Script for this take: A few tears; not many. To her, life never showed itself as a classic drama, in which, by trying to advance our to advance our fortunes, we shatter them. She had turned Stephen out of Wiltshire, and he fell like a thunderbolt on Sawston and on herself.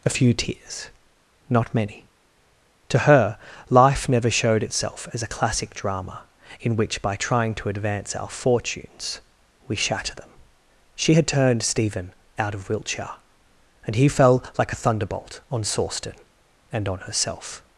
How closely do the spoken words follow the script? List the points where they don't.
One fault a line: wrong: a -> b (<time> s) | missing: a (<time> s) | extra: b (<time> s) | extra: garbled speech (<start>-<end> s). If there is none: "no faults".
missing: to advance our (8.3 s)